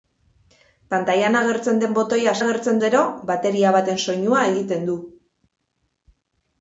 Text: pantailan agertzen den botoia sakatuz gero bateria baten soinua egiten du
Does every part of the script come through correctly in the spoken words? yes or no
no